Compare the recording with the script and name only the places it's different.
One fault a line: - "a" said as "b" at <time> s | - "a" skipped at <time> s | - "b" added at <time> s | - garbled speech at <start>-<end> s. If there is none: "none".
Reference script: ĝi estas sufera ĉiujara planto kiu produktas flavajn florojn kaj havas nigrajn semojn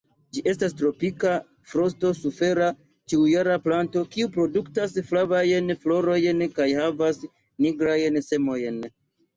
- "tropika frosto" added at 0.8 s